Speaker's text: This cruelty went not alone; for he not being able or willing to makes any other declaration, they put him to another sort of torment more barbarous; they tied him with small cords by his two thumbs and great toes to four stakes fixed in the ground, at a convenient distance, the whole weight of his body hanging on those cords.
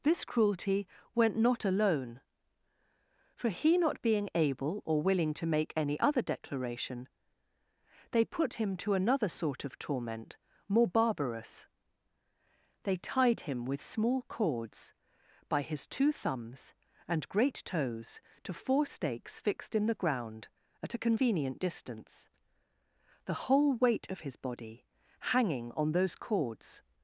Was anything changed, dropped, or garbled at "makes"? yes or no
yes